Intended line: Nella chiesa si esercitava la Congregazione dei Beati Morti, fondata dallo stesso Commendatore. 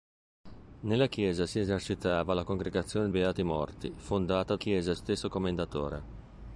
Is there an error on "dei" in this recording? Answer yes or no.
yes